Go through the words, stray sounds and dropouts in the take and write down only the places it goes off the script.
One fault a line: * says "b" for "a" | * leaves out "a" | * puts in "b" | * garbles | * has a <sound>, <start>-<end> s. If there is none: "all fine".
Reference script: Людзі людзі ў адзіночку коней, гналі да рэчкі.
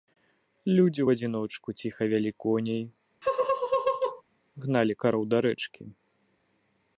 * leaves out "людзі"
* puts in "ціха вялі"
* has a laugh, 3.2-4.2 s
* puts in "кароў"